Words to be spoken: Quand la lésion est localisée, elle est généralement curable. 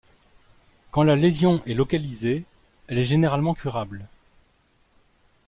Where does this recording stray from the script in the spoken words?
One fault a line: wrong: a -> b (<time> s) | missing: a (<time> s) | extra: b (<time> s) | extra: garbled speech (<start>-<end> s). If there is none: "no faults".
no faults